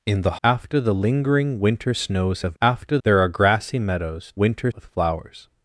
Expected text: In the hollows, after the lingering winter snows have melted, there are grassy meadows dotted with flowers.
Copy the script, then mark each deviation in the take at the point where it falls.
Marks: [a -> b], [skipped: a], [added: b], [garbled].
In the [skipped: hollows,] after the lingering winter snows have [melted, -> after] there are grassy meadows [dotted -> winter] with flowers.